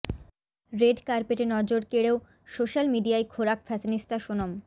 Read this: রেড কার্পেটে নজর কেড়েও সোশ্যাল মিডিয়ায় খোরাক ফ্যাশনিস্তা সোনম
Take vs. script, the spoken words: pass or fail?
pass